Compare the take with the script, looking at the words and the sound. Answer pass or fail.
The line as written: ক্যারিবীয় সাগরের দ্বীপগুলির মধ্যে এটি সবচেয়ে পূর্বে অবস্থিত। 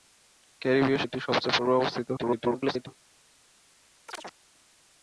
fail